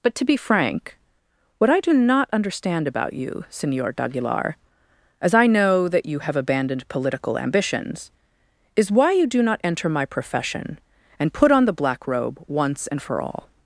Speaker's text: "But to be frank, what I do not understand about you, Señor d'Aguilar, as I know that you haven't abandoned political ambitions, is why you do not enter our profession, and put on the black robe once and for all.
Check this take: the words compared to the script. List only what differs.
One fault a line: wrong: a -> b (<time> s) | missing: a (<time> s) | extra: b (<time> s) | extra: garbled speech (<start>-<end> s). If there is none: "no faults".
wrong: haven't -> have (6.2 s)
wrong: our -> my (9.9 s)